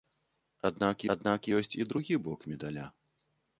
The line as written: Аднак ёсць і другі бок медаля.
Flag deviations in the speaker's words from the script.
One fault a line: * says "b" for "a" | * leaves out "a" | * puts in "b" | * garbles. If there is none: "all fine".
* puts in "аднак"